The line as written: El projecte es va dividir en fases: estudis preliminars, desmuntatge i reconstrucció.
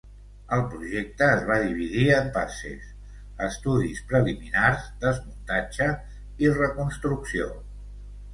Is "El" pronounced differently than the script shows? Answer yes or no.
no